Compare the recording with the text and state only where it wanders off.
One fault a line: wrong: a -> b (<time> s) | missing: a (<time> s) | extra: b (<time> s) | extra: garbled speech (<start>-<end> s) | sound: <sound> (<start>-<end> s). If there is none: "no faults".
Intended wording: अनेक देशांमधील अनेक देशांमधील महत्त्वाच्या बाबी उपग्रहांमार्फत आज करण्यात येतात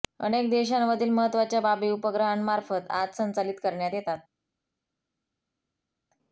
missing: अनेक देशांमधील (1.1 s)
extra: संचालित (3.2 s)